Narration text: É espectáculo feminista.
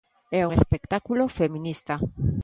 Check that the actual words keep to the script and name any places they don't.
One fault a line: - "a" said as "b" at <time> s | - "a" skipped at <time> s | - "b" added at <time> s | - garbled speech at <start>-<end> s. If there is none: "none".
none